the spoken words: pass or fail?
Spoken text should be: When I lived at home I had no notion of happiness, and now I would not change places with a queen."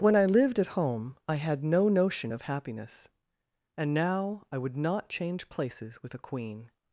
pass